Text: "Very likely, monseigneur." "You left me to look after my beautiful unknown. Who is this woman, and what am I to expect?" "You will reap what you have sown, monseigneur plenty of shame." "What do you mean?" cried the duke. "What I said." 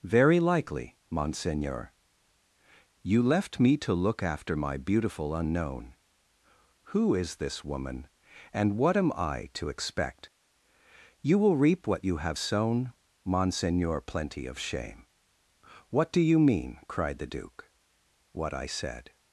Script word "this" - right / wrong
right